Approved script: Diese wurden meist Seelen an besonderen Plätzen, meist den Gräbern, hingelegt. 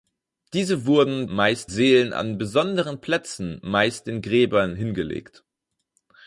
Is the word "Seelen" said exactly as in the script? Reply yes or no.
yes